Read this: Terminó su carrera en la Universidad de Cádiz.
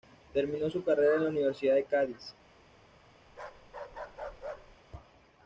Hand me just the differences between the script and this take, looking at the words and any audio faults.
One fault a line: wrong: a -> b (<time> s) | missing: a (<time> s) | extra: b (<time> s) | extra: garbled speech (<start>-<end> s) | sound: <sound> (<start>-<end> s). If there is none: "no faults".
sound: bark (3.3-4.8 s)